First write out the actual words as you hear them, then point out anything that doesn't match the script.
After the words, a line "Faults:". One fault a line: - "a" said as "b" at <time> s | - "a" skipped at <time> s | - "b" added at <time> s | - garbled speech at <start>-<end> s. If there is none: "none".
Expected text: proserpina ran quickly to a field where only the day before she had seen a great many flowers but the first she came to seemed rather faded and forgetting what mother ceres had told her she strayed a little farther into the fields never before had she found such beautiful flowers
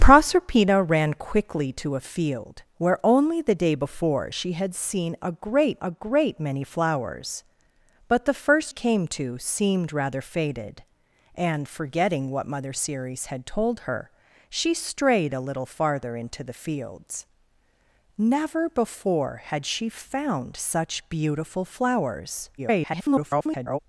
proserpina ran quickly to a field where only the day before she had seen a great a great many flowers but the first came to seemed rather faded and forgetting what mother ceres had told her she strayed a little farther into the fields never before had she found such beautiful flowers [garbled]
Faults:
- "a great" added at 5.8 s
- "she" skipped at 8.7 s
- garbled speech at 22.6-23.8 s